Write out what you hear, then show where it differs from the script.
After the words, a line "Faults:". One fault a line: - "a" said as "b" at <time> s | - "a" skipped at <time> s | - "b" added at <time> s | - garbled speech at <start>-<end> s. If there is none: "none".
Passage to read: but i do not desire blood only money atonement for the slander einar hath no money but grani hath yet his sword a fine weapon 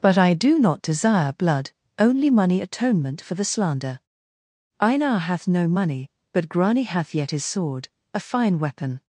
but i do not desire blood only money atonement for the slander einar hath no money but grani hath yet his sword a fine weapon
Faults:
none